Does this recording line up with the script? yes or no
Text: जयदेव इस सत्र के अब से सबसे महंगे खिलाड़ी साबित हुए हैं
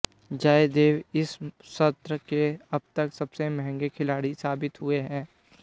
no